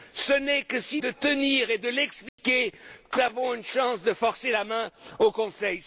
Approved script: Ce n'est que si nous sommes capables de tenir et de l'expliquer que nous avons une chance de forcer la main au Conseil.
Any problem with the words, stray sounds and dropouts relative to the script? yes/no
yes